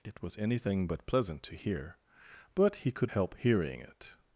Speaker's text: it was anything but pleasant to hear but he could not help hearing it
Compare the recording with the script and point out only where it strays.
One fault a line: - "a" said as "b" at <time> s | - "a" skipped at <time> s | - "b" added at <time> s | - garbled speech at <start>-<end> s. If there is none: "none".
- "not" skipped at 3.1 s